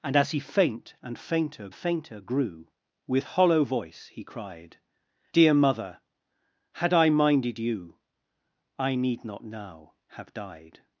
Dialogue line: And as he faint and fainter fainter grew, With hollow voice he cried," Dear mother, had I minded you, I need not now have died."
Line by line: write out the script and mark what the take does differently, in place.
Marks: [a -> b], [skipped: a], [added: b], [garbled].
And as he faint and fainter fainter grew, With hollow voice he cried," Dear mother, had I minded you, I need not now have died."